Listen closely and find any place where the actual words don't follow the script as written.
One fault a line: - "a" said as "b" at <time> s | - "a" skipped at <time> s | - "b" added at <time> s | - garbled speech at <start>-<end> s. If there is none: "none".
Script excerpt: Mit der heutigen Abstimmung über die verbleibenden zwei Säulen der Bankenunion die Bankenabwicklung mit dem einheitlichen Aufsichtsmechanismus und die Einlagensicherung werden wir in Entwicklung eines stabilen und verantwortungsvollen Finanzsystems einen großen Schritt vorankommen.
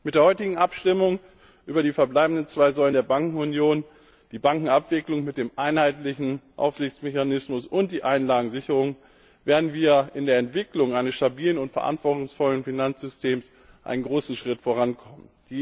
- "der" added at 10.3 s